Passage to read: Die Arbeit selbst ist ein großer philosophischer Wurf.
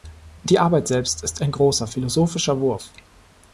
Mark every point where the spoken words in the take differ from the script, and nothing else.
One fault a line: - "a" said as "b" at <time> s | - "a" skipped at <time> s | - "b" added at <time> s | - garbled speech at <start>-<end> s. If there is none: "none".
none